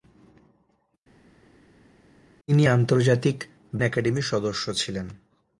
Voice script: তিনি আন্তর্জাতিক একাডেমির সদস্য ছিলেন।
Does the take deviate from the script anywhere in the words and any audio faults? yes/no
no